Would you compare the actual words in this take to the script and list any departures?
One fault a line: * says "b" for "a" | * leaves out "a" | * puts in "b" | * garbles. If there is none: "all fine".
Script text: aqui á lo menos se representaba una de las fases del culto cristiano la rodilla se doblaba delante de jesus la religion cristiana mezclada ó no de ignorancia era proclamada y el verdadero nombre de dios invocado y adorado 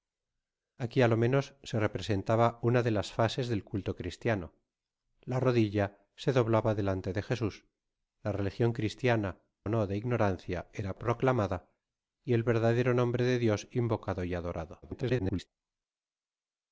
* leaves out "mezclada"
* garbles